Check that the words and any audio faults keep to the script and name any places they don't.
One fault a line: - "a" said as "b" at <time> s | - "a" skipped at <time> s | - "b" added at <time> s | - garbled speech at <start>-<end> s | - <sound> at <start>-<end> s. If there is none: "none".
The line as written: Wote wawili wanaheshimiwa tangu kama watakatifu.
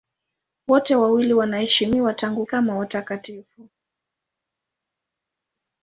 none